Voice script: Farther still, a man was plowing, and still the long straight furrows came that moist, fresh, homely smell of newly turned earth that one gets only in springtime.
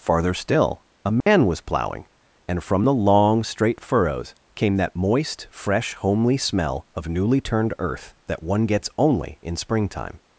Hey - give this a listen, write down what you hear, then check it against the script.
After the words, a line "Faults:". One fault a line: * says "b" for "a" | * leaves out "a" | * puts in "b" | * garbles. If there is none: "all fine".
Farther still, a man was plowing, and from the long straight furrows came that moist, fresh, homely smell of newly turned earth that one gets only in springtime.
Faults:
* says "from" for "still"